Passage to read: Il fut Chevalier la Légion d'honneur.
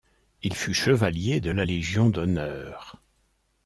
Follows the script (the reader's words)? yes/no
no